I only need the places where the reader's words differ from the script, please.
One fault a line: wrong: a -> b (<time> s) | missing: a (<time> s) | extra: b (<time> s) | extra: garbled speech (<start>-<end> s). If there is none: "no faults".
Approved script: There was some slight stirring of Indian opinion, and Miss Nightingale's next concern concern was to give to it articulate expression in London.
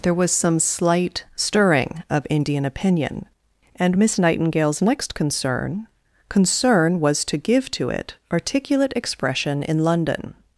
no faults